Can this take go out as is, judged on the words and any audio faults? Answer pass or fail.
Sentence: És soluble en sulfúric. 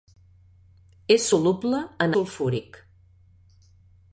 pass